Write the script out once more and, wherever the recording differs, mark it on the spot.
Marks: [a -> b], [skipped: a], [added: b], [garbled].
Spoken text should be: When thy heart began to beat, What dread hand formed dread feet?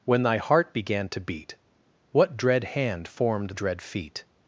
When thy heart began to beat, What dread hand formed dread feet?